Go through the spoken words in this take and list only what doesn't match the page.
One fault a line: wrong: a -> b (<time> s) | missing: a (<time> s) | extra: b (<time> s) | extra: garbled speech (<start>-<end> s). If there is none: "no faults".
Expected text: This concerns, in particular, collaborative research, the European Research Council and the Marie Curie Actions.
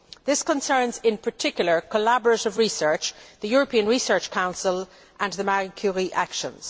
no faults